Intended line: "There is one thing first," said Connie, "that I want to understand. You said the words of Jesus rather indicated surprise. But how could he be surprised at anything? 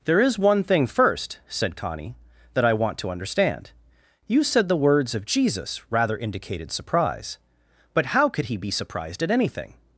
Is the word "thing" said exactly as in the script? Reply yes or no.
yes